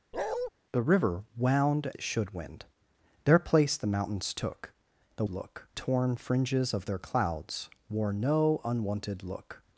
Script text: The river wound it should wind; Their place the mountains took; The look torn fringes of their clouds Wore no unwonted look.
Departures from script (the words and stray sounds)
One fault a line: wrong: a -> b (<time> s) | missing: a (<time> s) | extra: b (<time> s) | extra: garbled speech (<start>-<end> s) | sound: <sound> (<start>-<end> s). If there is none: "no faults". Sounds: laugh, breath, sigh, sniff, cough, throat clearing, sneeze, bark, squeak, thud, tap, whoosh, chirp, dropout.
sound: bark (0.1-0.5 s)